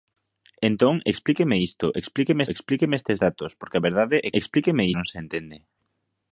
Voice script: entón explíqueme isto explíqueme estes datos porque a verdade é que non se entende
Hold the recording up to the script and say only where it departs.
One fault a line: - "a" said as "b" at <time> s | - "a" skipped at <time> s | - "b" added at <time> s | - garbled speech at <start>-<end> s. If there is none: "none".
- "explíqueme" added at 2.5 s
- "que" said as "explíqueme" at 4.4 s